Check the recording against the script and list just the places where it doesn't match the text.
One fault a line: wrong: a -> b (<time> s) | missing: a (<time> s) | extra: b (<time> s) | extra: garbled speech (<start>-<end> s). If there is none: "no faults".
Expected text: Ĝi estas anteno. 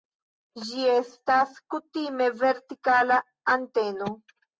extra: kutime vertikala (1.7 s)